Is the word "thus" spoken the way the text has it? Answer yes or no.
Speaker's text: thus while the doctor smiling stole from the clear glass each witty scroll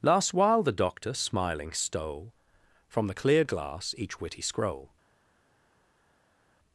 no